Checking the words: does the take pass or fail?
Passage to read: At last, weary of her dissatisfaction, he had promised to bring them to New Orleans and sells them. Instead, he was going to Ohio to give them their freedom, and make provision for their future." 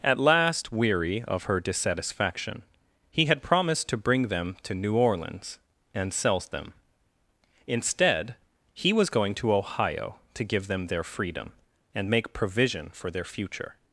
pass